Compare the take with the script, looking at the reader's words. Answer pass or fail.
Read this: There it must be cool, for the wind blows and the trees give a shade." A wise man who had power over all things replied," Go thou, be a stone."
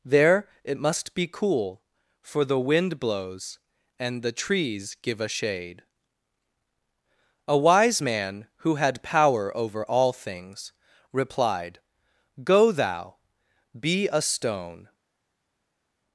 pass